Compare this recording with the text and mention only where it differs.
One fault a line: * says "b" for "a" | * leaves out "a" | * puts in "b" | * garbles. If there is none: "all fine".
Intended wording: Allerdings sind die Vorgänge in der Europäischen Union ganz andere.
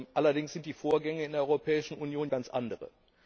all fine